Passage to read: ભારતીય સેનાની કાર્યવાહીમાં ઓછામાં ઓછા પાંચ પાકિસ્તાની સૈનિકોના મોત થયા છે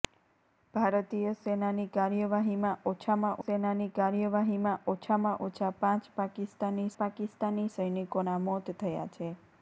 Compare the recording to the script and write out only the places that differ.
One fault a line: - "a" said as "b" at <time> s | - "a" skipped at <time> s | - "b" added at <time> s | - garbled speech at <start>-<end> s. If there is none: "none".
- "સેનાની કાર્યવાહીમાં ઓછામાં" added at 3.4 s
- "પાકિસ્તાની" added at 7.0 s